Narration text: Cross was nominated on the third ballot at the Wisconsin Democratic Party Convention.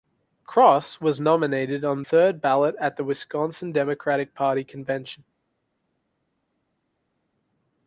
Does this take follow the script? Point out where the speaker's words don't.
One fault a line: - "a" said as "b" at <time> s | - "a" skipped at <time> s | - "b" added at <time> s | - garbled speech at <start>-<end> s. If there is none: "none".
- "the" skipped at 2.0 s